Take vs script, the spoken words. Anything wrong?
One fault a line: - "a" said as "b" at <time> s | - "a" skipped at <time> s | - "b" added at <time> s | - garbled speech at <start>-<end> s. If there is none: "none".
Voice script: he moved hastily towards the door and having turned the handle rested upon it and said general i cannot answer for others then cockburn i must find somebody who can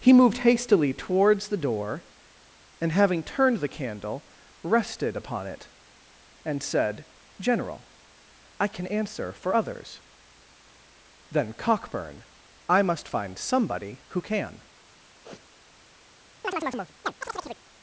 - "handle" said as "candle" at 3.7 s
- "cannot" said as "can" at 8.7 s